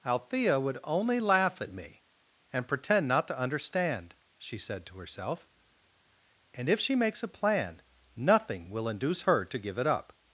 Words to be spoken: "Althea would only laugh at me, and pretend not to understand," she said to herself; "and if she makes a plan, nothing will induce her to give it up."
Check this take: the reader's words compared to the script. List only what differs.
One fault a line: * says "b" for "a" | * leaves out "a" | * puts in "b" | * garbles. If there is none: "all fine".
all fine